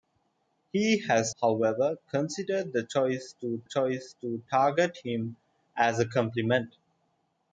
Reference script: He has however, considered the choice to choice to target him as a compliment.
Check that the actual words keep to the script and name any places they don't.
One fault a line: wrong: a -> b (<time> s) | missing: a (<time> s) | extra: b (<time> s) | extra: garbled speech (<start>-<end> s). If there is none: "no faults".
no faults